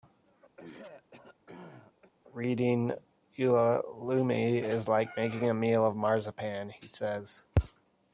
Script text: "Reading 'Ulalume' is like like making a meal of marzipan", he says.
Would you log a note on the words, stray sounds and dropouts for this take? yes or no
yes